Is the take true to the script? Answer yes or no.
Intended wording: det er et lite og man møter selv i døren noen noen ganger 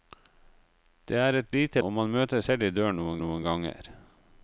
yes